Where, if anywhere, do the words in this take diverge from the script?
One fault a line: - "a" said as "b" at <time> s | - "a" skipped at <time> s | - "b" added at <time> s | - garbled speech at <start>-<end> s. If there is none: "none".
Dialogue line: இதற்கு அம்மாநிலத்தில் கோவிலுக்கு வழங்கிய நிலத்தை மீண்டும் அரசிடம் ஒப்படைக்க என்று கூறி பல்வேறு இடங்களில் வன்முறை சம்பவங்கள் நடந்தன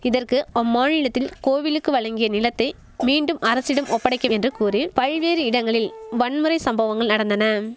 none